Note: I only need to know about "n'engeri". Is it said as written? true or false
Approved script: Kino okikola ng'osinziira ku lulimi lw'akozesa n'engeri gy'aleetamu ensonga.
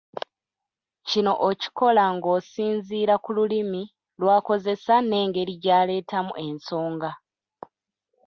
true